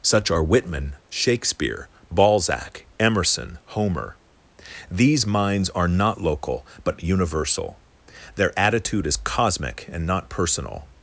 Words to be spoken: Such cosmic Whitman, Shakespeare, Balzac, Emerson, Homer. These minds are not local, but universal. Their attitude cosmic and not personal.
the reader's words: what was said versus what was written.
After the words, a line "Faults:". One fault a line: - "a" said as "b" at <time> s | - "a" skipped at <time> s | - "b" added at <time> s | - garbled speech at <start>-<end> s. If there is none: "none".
Such are Whitman, Shakespeare, Balzac, Emerson, Homer. These minds are not local, but universal. Their attitude is cosmic and not personal.
Faults:
- "cosmic" said as "are" at 0.3 s
- "is" added at 9.0 s